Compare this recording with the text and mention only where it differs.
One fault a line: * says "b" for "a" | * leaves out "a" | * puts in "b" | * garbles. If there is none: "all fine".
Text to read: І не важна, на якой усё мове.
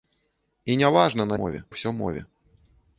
* says "мове" for "якой"